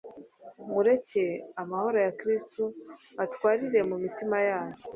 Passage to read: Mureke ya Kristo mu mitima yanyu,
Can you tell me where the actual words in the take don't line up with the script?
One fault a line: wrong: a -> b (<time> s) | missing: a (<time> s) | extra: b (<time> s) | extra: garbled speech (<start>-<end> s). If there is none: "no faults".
extra: amahoro (1.6 s)
extra: atwarire (3.2 s)